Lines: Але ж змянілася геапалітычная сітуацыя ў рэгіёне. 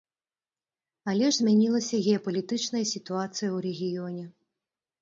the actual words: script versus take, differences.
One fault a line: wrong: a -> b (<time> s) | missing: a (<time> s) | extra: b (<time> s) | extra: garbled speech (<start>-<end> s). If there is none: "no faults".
no faults